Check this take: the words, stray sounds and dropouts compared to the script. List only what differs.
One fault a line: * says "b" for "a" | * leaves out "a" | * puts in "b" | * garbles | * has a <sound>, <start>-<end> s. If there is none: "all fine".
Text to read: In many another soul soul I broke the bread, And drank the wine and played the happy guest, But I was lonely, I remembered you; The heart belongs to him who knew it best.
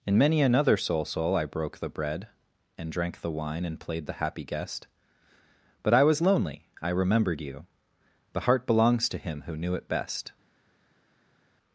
all fine